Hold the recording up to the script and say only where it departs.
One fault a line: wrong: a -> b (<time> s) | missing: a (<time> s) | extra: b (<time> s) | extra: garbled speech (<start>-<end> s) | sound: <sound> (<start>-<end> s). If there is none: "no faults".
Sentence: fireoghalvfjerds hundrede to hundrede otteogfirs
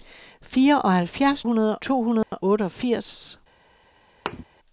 sound: dropout (2.2-2.3 s)
sound: thud (4.3-4.4 s)